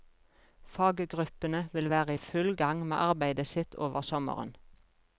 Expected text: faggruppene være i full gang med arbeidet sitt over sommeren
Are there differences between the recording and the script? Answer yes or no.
yes